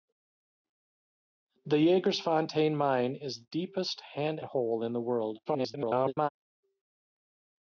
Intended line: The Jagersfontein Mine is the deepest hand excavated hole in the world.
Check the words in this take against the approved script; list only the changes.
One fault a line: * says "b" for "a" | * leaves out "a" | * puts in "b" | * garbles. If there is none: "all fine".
* leaves out "the"
* leaves out "excavated"
* garbles